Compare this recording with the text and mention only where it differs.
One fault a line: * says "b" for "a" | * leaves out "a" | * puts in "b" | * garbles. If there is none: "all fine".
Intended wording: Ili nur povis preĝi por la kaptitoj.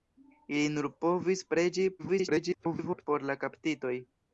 * garbles